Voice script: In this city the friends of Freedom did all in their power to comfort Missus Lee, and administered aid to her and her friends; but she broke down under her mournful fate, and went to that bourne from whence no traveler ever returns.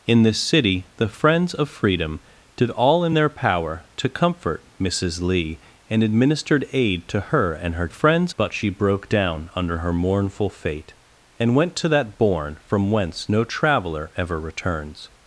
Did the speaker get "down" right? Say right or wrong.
right